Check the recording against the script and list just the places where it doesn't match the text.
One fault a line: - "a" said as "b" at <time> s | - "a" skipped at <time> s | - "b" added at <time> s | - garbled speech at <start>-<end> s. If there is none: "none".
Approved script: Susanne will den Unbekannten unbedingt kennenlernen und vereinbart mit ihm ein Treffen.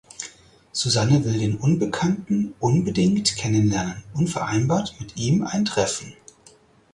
none